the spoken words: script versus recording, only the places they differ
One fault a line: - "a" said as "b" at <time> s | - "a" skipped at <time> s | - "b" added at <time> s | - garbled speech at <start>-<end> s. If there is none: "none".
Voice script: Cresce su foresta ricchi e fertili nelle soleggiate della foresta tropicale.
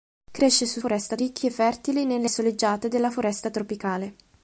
none